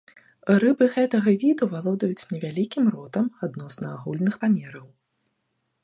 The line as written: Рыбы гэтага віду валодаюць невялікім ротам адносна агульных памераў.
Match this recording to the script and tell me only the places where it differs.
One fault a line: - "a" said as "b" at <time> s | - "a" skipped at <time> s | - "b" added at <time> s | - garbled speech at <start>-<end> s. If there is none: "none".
none